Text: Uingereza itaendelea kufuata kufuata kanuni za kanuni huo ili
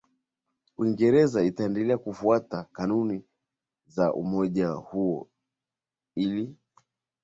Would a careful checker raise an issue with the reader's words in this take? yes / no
yes